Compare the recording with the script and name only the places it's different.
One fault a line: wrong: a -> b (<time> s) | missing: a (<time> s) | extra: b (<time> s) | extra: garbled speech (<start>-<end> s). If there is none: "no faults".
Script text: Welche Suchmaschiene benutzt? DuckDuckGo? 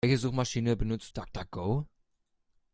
no faults